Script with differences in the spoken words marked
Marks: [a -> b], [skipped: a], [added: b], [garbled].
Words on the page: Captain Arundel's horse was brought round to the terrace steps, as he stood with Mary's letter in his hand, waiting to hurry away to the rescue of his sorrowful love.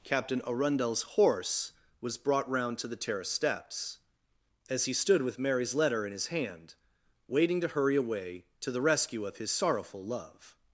Captain Arundel's horse was brought round to the terrace steps, as he stood with Mary's letter in his hand, waiting to hurry away to the rescue of his sorrowful love.